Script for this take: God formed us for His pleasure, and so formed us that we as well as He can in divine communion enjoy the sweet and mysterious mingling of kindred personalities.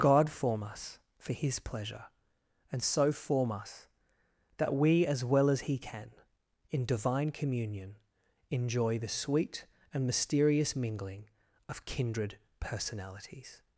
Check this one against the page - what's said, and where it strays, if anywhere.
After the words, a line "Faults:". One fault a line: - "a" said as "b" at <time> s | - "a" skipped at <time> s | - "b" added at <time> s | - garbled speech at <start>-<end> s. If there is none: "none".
God form us for His pleasure, and so form us that we as well as He can in divine communion enjoy the sweet and mysterious mingling of kindred personalities.
Faults:
- "formed" said as "form" at 0.3 s
- "formed" said as "form" at 3.1 s